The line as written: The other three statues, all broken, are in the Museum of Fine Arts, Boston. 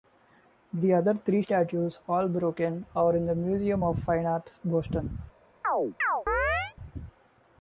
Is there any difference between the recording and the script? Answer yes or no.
no